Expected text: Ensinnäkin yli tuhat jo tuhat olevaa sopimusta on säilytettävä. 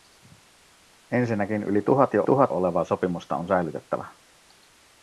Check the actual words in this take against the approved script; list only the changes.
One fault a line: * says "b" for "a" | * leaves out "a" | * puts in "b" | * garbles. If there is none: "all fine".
all fine